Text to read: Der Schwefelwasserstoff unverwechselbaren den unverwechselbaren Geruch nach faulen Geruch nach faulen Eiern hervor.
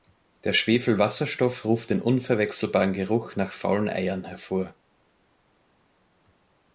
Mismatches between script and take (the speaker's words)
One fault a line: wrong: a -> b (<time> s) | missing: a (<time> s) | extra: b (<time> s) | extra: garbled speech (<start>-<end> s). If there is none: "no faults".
wrong: unverwechselbaren -> ruft (1.6 s)
missing: Geruch nach faulen (3.9 s)